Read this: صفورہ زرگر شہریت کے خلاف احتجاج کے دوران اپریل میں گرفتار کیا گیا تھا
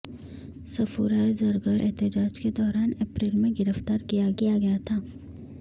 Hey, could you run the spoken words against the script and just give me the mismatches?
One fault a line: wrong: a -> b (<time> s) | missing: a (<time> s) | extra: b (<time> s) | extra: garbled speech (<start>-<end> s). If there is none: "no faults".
missing: شہریت کے خلاف (1.8 s)
extra: کیا (4.4 s)